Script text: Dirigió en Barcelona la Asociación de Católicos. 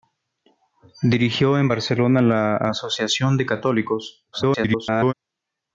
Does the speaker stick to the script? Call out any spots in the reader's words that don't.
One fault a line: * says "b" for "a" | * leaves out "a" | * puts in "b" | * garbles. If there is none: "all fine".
* garbles